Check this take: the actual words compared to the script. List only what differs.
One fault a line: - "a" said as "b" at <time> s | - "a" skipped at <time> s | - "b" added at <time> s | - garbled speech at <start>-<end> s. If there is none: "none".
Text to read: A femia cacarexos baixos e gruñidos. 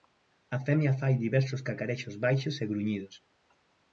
- "fai diversos" added at 1.0 s